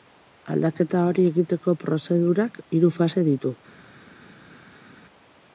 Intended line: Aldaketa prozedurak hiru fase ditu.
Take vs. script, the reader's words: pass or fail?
fail